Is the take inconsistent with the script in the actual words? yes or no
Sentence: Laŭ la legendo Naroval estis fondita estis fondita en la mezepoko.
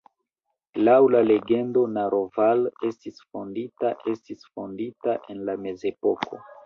no